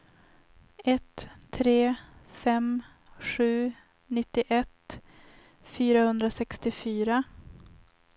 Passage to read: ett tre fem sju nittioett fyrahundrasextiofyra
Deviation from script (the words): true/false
false